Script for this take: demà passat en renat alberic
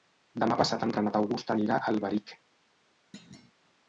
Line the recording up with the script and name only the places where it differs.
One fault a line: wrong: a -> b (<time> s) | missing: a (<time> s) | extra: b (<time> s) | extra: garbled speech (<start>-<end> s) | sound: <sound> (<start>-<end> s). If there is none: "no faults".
extra: august anirà a (1.2 s)
sound: thud (3.1-3.5 s)